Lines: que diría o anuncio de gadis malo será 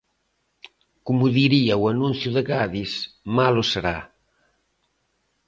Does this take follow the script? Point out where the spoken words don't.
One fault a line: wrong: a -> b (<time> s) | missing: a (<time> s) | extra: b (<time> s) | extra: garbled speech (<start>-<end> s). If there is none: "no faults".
wrong: que -> como (1.1 s)